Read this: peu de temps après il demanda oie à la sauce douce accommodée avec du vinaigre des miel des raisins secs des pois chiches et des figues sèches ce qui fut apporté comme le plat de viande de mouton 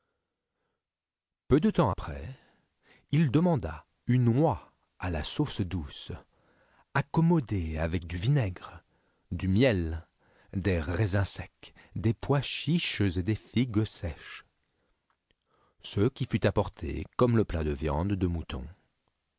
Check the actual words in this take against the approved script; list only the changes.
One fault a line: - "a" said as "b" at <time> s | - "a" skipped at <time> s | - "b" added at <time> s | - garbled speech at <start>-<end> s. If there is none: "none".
- "une" added at 4.0 s
- "des" said as "du" at 9.3 s